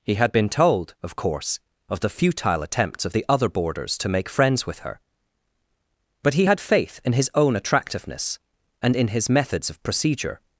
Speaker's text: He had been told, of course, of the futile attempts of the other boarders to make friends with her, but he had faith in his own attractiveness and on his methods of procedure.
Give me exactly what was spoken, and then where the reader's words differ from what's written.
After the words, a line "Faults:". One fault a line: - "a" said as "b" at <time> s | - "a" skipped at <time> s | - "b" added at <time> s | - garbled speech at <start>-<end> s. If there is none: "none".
He had been told, of course, of the futile attempts of the other boarders to make friends with her, but he had faith in his own attractiveness and in his methods of procedure.
Faults:
- "on" said as "in" at 9.0 s